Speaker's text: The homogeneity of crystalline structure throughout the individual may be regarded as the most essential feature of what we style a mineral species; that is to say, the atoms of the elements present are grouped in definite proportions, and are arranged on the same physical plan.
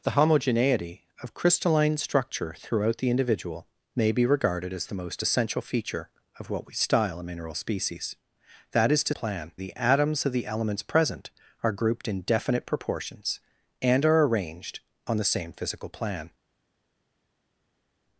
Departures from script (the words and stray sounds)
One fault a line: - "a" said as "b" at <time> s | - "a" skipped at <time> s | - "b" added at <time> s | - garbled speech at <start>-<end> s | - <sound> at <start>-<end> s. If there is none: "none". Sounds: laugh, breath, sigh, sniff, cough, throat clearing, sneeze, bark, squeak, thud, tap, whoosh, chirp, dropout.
- "say" said as "plan" at 9.1 s